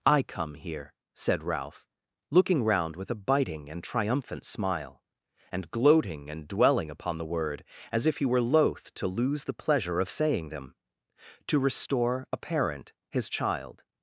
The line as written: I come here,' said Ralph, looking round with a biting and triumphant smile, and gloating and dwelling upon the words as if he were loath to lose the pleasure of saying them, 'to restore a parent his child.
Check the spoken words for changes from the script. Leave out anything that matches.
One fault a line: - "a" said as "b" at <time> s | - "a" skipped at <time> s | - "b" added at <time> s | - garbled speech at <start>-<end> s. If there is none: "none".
- "words" said as "word" at 7.2 s